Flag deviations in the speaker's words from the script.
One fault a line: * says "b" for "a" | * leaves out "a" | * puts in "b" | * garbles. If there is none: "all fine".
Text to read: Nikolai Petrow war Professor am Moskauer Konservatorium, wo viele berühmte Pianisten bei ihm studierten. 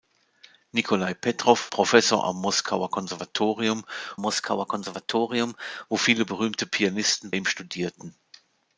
* leaves out "war"
* puts in "Moskauer Konservatorium"
* leaves out "bei"